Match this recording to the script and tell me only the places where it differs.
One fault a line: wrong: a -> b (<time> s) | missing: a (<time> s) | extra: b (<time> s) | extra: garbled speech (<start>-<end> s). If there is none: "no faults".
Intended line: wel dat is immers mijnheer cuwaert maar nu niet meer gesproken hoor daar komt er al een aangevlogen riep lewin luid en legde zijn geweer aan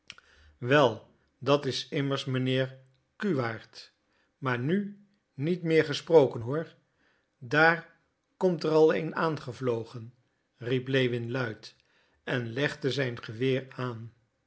no faults